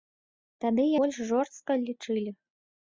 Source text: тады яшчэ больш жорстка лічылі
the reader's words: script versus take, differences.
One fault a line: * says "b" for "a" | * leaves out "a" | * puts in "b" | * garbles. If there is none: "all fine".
* leaves out "яшчэ"